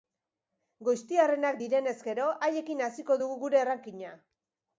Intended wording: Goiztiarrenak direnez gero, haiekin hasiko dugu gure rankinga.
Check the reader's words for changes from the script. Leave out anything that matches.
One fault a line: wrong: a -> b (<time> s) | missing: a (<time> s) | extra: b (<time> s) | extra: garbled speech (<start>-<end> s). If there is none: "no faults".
no faults